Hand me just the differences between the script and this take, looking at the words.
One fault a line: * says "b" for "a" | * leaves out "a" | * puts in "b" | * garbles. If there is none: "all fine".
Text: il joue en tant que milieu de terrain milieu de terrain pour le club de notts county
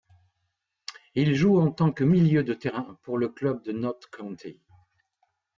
* leaves out "milieu de terrain"